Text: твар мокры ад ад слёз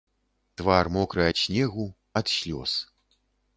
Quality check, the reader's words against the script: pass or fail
fail